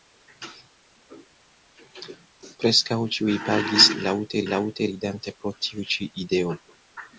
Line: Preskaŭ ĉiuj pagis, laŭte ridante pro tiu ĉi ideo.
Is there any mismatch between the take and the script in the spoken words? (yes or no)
yes